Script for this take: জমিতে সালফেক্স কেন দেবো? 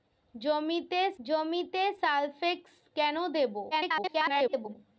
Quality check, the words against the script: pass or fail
fail